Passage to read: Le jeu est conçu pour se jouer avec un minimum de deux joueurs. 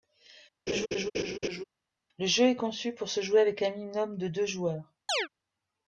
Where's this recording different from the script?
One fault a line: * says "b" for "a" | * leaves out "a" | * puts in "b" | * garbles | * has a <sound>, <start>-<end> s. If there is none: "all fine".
* has a laugh, 0.7-1.6 s
* has a chirp, 5.1-5.3 s